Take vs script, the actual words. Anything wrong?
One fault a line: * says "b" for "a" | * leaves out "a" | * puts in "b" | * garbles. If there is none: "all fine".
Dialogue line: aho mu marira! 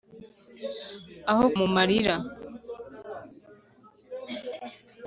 all fine